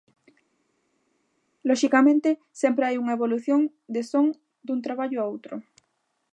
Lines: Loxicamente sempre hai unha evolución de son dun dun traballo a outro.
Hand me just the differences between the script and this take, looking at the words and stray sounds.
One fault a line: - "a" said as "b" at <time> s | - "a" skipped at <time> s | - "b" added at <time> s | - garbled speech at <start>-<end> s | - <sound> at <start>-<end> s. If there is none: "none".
- "dun" skipped at 4.8 s